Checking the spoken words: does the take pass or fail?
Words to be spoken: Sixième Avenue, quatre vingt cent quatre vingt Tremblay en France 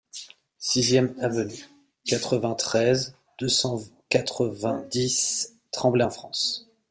fail